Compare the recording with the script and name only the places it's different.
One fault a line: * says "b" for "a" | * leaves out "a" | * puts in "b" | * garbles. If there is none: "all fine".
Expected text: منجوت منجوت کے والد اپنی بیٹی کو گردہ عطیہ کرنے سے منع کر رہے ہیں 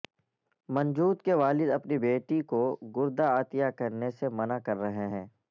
* leaves out "منجوت"